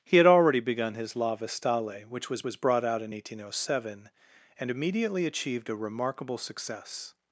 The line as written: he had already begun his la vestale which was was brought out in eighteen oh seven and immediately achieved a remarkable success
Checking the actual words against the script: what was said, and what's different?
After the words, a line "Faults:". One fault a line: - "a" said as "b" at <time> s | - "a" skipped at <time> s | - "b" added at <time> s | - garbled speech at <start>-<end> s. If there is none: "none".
he had already begun his la vestale which was was brought out in eighteen oh seven and immediately achieved a remarkable success
Faults:
none